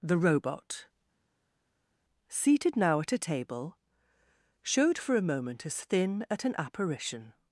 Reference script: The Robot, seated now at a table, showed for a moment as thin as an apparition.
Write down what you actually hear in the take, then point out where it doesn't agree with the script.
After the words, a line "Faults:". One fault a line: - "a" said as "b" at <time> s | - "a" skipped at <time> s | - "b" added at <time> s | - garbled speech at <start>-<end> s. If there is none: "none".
The Robot, seated now at a table, showed for a moment as thin at an apparition.
Faults:
- "as" said as "at" at 6.3 s